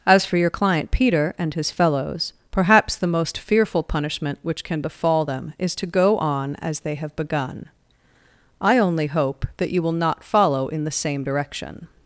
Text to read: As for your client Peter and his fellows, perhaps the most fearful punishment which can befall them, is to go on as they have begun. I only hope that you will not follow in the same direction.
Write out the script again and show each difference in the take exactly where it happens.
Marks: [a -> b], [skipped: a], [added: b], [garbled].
As for your client Peter and his fellows, perhaps the most fearful punishment which can befall them, is to go on as they have begun. I only hope that you will not follow in the same direction.